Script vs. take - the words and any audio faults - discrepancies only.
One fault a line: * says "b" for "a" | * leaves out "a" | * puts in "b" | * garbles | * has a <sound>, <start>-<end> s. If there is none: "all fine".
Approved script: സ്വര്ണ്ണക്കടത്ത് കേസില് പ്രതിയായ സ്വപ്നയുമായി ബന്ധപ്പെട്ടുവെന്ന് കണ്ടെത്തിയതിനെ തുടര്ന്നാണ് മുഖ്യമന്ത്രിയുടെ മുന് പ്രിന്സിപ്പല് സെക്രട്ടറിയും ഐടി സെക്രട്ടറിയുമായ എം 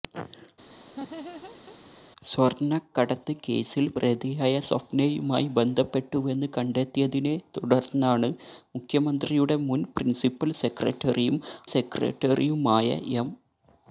* has a laugh, 0.7-1.8 s
* leaves out "ഐടി"